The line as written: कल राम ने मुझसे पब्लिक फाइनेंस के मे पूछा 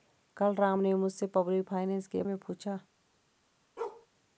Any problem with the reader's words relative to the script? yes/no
no